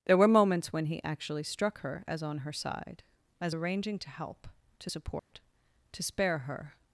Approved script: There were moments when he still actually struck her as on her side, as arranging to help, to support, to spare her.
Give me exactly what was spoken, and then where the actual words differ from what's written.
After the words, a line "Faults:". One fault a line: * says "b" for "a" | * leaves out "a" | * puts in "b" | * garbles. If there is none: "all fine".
There were moments when he actually struck her as on her side, as arranging to help, to support, to spare her.
Faults:
* leaves out "still"